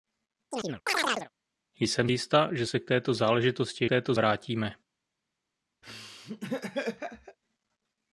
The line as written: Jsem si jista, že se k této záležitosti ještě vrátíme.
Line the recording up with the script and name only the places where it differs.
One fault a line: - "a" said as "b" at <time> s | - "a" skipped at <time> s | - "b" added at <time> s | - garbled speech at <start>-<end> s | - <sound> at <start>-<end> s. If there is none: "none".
- chirp at 0.5-1.3 s
- "si" skipped at 2.1 s
- "ještě" said as "této" at 3.9 s
- laugh at 5.8-7.4 s